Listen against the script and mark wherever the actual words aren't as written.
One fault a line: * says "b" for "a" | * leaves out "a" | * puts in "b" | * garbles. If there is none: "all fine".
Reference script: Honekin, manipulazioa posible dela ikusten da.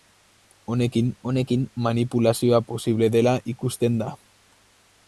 * puts in "honekin"